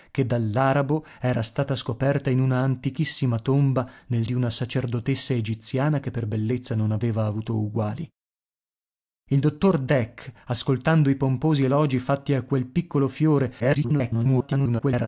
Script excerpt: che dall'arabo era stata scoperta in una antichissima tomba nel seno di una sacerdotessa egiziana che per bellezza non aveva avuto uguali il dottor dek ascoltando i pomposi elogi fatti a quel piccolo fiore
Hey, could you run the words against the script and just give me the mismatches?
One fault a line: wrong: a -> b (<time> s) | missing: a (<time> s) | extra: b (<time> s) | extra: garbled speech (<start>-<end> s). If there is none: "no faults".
missing: seno (4.2 s)
extra: garbled speech (13.6-15.1 s)